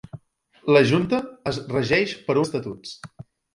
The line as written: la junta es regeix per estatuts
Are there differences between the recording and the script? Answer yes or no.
no